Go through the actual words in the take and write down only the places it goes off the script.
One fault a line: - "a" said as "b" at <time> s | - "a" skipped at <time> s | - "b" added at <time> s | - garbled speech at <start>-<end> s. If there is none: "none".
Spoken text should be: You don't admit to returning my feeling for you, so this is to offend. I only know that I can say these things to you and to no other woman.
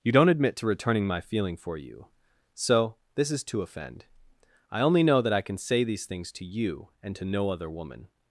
none